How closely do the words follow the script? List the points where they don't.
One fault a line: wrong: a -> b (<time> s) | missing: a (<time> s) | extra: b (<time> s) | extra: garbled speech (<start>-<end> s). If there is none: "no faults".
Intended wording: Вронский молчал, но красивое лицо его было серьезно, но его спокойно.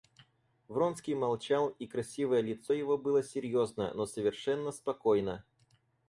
wrong: но -> и (1.7 s)
wrong: его -> совершенно (4.1 s)